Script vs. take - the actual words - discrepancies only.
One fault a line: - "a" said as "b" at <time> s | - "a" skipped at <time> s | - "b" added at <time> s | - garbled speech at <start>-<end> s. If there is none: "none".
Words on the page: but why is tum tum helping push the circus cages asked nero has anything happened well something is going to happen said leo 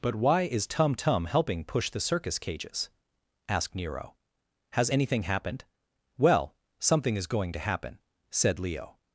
none